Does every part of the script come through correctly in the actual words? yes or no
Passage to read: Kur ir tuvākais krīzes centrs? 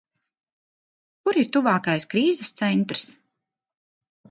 yes